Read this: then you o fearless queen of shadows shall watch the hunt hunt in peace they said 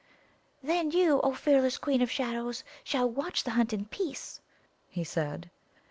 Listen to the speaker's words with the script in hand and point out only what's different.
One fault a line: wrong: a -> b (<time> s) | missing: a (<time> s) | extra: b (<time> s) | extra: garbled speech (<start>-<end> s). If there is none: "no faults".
missing: hunt (3.7 s)
wrong: they -> he (4.9 s)